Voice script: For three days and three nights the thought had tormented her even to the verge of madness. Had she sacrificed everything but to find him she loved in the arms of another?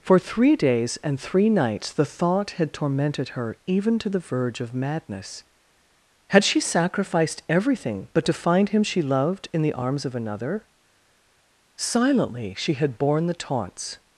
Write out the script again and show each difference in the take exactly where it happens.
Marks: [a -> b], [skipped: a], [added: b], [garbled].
For three days and three nights the thought had tormented her even to the verge of madness. Had she sacrificed everything but to find him she loved in the arms of another? [added: Silently she had borne the taunts]